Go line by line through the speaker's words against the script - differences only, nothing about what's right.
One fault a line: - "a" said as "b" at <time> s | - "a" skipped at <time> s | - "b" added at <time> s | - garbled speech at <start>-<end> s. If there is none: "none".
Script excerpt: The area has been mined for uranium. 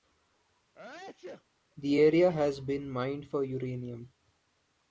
none